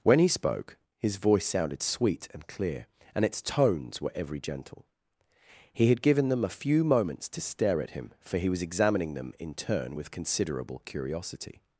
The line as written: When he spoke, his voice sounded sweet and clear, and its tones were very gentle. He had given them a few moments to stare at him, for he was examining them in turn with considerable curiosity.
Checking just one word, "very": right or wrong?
wrong